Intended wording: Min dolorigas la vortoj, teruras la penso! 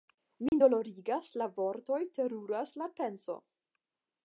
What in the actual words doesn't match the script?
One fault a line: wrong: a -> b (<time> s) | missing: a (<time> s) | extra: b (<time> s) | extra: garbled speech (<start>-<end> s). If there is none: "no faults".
no faults